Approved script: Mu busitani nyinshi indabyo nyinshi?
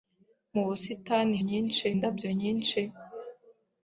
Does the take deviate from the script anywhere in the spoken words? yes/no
no